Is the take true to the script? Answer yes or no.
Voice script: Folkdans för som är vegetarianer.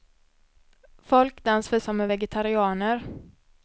yes